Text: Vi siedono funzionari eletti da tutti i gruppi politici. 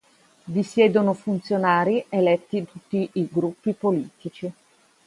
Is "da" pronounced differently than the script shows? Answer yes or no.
yes